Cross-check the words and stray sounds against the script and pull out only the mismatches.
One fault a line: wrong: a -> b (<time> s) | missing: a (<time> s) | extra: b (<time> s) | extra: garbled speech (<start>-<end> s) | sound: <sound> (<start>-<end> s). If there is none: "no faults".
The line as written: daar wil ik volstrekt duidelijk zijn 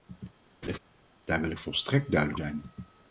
sound: laugh (0.6-0.8 s)